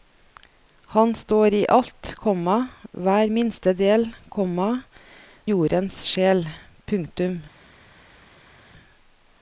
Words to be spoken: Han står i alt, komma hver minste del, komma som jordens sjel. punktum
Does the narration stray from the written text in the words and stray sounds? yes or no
yes